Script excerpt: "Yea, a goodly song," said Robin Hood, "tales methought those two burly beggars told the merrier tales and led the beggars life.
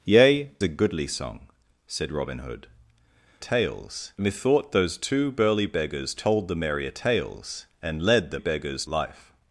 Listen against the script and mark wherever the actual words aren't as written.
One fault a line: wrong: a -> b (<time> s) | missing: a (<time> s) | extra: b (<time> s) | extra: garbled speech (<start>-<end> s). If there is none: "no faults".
no faults